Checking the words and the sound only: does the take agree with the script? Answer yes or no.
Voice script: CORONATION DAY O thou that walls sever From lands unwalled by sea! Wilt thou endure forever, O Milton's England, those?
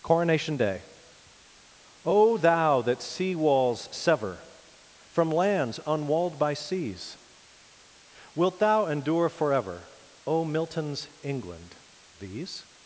no